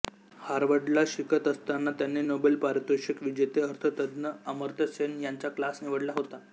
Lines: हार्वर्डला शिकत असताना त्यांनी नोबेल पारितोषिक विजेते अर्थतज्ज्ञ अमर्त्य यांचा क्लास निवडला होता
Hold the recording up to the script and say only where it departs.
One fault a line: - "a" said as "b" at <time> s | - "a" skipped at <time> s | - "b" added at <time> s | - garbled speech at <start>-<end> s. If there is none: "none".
- "सेन" added at 4.9 s